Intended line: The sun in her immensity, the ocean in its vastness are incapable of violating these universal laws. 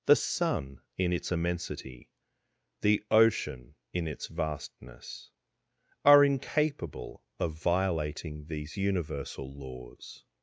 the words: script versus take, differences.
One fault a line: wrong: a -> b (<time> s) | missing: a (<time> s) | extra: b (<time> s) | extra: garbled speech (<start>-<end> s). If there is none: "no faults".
wrong: her -> its (1.1 s)